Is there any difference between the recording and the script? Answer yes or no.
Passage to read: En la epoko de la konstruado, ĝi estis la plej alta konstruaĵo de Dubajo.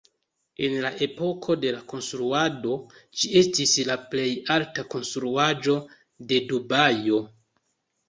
no